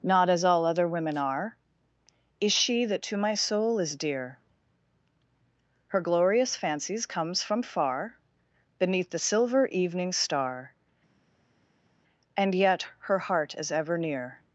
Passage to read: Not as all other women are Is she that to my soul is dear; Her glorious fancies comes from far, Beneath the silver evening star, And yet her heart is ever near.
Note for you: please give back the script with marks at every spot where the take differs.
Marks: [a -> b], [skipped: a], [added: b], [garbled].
Not as all other women are Is she that to my soul is dear; Her glorious fancies comes from far, Beneath the silver evening star, And yet her heart is ever near.